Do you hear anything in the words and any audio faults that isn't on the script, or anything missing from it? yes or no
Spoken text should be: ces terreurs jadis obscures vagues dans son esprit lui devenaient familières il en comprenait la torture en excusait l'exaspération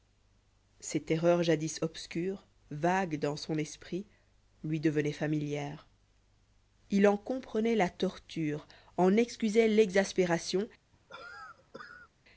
yes